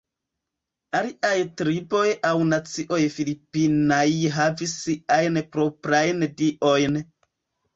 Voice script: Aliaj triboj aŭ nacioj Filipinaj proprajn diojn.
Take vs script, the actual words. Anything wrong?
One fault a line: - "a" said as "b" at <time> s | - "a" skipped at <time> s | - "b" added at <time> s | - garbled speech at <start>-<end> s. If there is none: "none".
- "havis siajn" added at 4.4 s